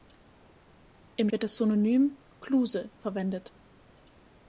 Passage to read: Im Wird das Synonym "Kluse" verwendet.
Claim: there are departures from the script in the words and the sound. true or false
false